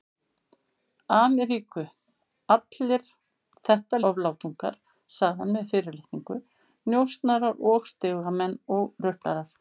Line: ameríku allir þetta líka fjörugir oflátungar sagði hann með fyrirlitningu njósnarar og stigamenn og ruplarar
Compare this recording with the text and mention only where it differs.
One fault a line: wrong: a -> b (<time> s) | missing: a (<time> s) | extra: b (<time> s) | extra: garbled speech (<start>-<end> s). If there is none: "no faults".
missing: líka fjörugir (4.0 s)